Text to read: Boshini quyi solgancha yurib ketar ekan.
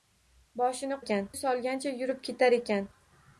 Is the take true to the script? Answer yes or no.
no